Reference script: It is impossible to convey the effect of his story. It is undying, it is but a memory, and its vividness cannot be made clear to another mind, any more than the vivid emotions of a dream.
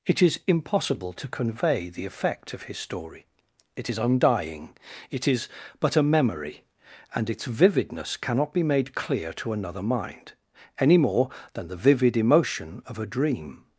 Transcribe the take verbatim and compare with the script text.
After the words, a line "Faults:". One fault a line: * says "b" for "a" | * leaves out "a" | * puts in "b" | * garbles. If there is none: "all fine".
It is impossible to convey the effect of his story. It is undying, it is but a memory, and its vividness cannot be made clear to another mind, any more than the vivid emotion of a dream.
Faults:
* says "emotion" for "emotions"